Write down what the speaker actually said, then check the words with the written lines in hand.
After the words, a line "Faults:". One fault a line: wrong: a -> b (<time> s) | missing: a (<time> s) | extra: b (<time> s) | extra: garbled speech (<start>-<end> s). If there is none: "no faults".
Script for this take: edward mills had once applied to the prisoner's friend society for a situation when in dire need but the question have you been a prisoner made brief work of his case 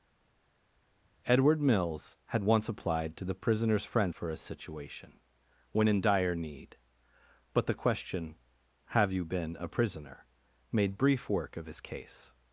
edward mills had once applied to the prisoner's friend for a situation when in dire need but the question have you been a prisoner made brief work of his case
Faults:
missing: society (4.1 s)